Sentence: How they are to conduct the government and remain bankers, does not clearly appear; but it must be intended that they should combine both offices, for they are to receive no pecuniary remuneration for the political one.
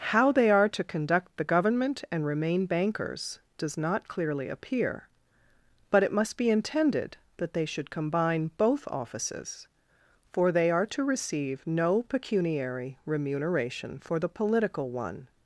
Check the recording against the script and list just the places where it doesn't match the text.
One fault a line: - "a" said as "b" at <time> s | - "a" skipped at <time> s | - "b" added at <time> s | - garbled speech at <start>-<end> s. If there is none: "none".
none